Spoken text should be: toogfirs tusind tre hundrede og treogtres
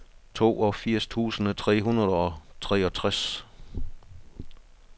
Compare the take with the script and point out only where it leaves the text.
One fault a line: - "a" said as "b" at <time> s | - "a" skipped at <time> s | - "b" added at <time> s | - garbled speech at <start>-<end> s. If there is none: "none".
none